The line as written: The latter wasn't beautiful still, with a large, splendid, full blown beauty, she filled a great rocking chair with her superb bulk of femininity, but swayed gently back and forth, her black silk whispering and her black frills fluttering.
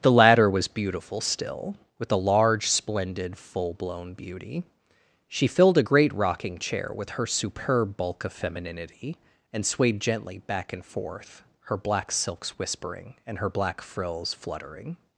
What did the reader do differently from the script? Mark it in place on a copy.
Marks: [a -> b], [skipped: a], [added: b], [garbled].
The latter [wasn't -> was] beautiful still, with a large, splendid, full blown beauty, she filled a great rocking chair with her superb bulk of femininity, [but -> and] swayed gently back and forth, her black [silk -> silks] whispering and her black frills fluttering.